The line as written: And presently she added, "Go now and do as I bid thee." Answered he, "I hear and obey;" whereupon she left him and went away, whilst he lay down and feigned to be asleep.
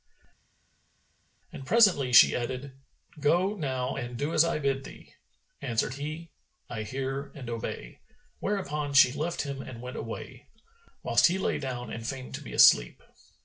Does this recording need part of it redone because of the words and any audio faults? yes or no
no